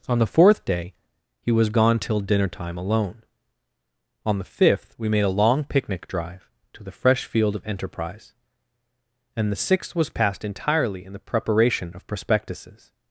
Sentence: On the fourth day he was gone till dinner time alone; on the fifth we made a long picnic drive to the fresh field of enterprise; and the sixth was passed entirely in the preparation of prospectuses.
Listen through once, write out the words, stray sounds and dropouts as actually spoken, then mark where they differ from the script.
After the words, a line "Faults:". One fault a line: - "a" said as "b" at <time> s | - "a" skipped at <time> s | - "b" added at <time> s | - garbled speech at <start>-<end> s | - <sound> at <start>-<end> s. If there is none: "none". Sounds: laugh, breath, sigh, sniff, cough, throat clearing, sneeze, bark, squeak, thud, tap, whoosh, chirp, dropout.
On the fourth day he was gone till dinner time alone; on the fifth we made a long picnic drive to the fresh field of enterprise; and the sixth was passed entirely in the preparation of prospectuses.
Faults:
none